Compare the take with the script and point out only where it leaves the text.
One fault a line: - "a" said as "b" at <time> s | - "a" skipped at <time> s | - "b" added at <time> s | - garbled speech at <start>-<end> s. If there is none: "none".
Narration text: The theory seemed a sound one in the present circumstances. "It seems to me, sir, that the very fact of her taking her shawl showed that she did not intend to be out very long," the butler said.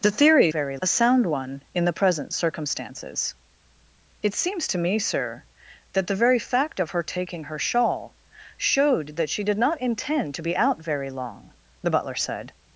- "seemed" said as "very" at 0.5 s